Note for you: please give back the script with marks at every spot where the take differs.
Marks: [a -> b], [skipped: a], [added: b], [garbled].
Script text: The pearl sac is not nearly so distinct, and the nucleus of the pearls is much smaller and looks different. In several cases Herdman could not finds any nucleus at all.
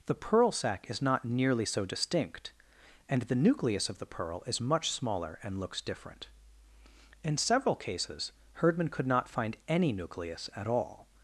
The pearl sac is not nearly so distinct, and the nucleus of the [pearls -> pearl] is much smaller and looks different. In several cases Herdman could not [finds -> find] any nucleus at all.